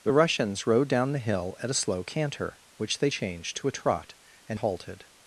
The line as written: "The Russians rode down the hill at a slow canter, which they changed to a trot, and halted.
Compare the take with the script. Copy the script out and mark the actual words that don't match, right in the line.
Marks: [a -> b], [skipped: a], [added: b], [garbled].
"The Russians rode down the hill at a slow canter, which they changed to a trot, and halted.